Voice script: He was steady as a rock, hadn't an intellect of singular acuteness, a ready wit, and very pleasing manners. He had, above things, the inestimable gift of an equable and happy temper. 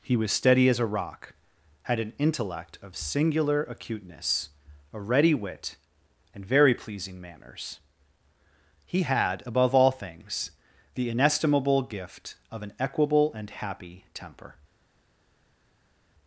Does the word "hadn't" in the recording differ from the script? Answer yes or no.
yes